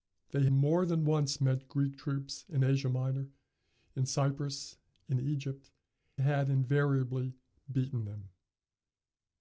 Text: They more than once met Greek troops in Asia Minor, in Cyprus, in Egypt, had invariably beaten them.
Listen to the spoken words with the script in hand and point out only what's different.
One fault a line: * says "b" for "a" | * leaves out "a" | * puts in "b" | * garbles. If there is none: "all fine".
all fine